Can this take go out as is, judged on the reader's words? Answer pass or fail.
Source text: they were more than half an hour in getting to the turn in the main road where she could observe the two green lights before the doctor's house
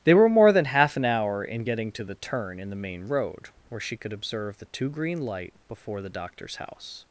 fail